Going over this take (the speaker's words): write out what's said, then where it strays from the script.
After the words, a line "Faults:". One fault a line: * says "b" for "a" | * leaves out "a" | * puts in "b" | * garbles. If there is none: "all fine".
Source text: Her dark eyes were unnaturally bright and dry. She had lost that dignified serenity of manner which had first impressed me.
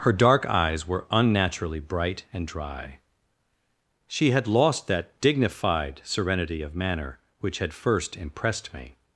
Her dark eyes were unnaturally bright and dry. She had lost that dignified serenity of manner which had first impressed me.
Faults:
all fine